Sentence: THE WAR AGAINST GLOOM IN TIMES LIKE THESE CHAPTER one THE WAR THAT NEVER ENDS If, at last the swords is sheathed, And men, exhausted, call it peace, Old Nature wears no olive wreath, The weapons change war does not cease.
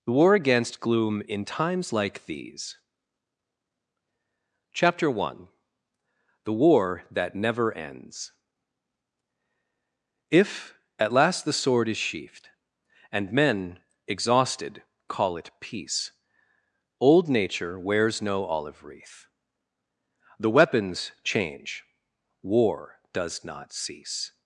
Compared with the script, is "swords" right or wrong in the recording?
wrong